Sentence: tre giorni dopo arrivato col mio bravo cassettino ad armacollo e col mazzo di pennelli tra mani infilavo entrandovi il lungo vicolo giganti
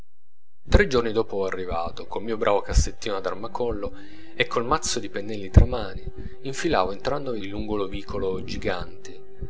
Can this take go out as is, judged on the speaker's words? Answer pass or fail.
pass